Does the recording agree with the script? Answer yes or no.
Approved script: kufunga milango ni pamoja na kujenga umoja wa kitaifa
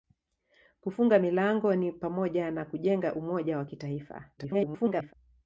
no